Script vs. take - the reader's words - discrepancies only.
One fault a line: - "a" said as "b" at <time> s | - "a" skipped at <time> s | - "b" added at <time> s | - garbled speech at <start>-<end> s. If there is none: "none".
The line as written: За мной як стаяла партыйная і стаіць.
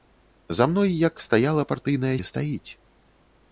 none